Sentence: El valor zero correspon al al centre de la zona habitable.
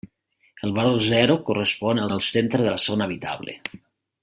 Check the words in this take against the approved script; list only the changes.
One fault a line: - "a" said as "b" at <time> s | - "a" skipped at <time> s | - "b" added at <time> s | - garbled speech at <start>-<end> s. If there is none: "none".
none